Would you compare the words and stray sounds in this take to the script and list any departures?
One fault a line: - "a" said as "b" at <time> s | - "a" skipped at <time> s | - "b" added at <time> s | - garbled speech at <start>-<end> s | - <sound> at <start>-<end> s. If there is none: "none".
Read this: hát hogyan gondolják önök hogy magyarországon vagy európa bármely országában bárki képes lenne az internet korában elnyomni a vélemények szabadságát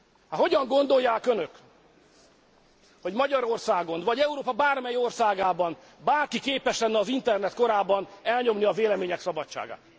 none